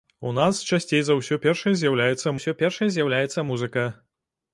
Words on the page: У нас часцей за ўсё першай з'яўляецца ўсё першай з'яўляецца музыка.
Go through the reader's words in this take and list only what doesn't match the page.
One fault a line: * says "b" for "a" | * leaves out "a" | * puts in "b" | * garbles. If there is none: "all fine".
all fine